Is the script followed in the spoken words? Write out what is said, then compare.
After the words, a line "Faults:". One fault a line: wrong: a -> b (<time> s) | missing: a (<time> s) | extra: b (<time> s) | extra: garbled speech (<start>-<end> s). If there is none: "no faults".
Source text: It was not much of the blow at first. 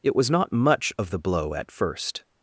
It was not much of the blow at first.
Faults:
no faults